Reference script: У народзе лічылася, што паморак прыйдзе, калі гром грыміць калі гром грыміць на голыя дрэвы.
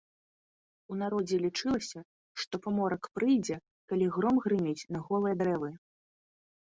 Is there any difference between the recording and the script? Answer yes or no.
yes